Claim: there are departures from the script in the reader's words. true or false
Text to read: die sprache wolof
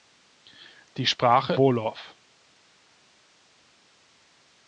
false